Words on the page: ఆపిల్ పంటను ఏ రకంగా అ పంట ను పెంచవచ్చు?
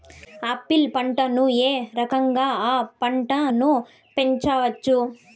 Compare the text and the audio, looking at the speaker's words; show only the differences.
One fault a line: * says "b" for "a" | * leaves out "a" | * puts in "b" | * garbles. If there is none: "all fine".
all fine